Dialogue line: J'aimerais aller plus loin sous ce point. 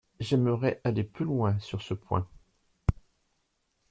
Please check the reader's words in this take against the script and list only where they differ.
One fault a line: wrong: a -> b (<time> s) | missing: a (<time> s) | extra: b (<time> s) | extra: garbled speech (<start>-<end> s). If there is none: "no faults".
wrong: sous -> sur (1.6 s)